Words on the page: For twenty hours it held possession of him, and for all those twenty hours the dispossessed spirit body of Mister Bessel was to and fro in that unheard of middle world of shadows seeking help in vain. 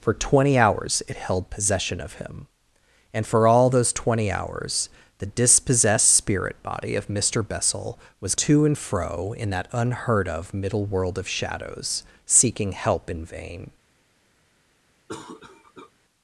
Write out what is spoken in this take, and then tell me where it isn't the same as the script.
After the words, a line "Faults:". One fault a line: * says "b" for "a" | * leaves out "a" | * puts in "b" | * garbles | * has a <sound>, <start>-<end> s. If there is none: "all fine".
For twenty hours it held possession of him, and for all those twenty hours the dispossessed spirit body of Mister Bessel was to and fro in that unheard of middle world of shadows seeking help in vain.
Faults:
* has a cough, 15.1-15.9 s